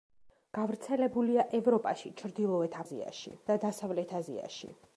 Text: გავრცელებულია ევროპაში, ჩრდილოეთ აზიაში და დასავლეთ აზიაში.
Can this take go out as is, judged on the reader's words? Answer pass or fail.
pass